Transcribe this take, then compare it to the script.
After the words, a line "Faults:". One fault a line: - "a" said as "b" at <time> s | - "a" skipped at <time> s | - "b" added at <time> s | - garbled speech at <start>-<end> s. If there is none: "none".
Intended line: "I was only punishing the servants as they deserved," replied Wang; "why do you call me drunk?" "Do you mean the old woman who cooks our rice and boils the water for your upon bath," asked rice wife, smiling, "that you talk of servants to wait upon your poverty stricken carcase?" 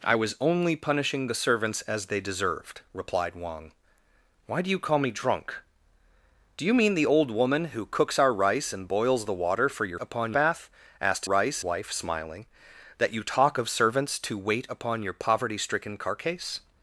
"I was only punishing the servants as they deserved," replied Wang; "why do you call me drunk?" "Do you mean the old woman who cooks our rice and boils the water for your upon bath," asked rice wife, smiling, "that you talk of servants to wait upon your poverty stricken carcase?"
Faults:
none